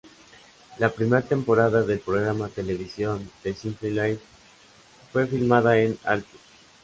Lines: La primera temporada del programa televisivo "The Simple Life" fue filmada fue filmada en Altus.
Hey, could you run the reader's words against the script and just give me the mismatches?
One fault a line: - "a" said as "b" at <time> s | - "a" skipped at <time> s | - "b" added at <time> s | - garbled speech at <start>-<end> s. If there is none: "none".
- "fue filmada" skipped at 5.8 s